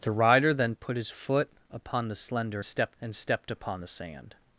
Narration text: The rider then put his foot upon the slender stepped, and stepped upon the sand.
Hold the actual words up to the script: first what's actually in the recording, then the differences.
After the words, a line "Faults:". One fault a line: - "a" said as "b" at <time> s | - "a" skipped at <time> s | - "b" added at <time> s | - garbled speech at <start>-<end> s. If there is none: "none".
The rider then put his foot upon the slender stepped, and stepped upon the sand.
Faults:
none